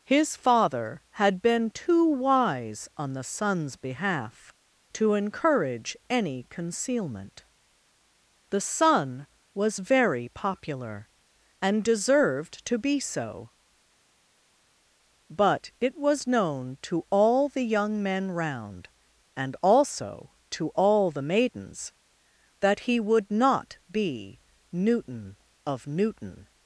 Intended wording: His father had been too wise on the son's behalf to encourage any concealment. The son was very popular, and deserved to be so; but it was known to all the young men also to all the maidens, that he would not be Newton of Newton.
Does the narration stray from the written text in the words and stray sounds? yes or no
yes